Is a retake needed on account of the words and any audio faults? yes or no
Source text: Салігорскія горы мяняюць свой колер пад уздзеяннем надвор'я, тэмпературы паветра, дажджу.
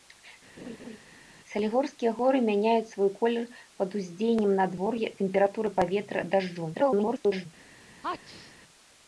yes